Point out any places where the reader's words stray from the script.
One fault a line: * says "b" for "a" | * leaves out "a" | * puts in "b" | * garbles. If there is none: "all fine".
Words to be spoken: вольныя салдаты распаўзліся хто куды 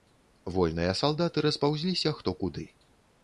all fine